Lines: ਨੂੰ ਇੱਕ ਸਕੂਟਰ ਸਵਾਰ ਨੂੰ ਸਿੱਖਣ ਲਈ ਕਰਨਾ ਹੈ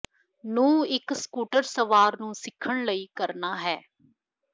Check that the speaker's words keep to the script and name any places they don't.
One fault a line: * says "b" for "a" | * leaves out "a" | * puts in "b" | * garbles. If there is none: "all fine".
all fine